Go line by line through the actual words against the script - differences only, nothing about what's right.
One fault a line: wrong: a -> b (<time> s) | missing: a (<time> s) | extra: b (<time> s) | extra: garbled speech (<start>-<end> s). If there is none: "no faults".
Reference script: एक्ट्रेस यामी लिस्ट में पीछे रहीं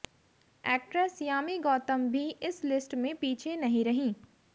extra: गौतम भी इस (1.6 s)
extra: नहीं (3.6 s)